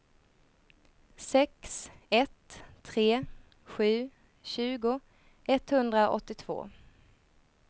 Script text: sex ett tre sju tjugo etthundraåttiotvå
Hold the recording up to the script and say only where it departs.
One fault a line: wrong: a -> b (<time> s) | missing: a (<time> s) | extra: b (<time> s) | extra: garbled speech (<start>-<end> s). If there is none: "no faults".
no faults